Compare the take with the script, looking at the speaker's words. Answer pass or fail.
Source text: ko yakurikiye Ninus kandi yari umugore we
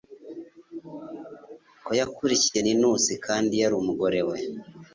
pass